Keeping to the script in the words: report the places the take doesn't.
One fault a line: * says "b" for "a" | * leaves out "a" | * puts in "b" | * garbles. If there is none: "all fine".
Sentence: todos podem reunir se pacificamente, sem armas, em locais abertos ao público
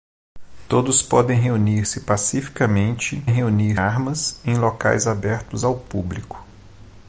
* says "reunir" for "sem"